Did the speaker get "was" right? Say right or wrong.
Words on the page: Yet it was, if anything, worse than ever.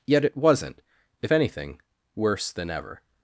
wrong